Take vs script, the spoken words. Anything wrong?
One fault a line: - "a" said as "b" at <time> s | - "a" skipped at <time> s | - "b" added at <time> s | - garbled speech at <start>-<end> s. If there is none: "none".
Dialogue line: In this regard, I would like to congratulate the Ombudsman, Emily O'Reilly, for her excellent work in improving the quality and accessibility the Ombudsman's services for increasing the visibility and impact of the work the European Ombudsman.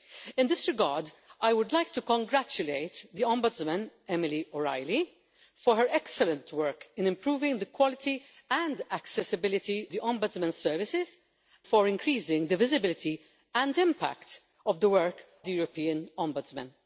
none